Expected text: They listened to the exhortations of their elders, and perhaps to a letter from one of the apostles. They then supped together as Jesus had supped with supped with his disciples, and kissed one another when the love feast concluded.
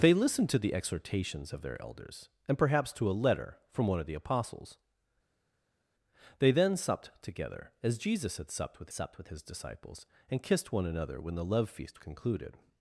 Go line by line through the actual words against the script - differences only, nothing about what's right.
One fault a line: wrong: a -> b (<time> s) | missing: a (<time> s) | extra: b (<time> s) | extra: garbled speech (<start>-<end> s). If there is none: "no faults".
no faults